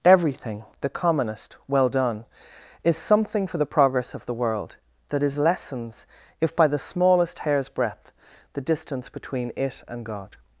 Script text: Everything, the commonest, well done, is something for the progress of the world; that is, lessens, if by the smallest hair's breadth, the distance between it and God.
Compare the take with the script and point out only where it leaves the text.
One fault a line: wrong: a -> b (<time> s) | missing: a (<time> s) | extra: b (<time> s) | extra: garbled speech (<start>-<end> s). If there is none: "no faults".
no faults